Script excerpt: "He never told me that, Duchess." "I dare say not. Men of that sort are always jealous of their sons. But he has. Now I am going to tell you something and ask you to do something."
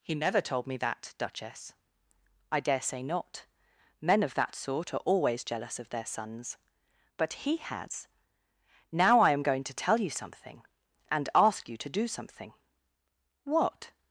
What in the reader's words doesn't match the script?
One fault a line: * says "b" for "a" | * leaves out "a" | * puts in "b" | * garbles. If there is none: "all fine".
* puts in "What"